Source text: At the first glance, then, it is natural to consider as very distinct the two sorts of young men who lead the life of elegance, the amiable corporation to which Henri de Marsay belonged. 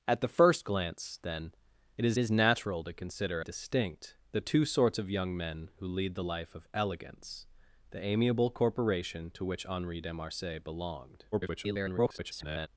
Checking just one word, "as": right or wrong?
wrong